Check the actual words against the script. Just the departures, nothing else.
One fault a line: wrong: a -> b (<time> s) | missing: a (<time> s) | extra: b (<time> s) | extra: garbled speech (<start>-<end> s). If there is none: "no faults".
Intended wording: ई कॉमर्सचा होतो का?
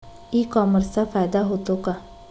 extra: फायदा (1.0 s)